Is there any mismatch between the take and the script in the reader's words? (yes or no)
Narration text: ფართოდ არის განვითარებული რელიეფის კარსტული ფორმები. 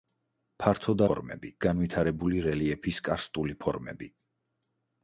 yes